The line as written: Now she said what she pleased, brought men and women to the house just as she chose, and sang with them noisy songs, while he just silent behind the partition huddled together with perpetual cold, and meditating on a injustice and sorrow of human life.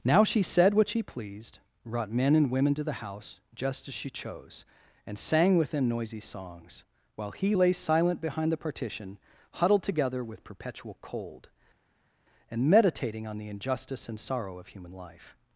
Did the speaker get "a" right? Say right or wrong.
wrong